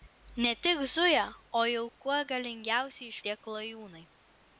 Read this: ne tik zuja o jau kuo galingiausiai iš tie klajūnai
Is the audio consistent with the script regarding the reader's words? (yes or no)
yes